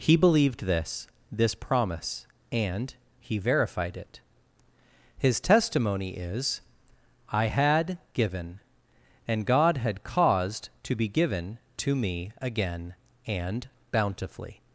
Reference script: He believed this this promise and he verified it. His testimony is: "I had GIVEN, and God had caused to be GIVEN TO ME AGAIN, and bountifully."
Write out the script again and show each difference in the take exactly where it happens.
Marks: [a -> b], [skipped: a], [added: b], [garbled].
He believed this this promise and he verified it. His testimony is: "I had GIVEN, and God had caused to be GIVEN TO ME AGAIN, and bountifully."